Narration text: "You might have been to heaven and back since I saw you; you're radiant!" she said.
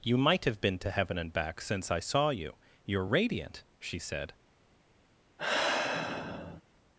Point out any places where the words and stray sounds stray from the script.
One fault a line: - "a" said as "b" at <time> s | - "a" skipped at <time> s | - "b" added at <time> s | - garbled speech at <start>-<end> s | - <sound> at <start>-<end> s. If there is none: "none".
- sigh at 5.4-6.6 s